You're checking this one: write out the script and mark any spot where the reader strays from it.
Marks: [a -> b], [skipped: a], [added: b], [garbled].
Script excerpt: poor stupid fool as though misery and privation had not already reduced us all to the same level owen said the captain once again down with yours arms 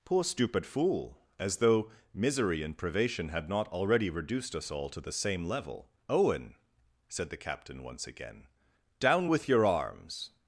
poor stupid fool as though misery and privation had not already reduced us all to the same level owen said the captain once again down with [yours -> your] arms